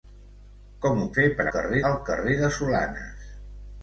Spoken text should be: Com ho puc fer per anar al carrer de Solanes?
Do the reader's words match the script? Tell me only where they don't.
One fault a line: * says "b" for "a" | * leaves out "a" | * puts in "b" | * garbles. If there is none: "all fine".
* leaves out "puc"
* says "carrer" for "anar"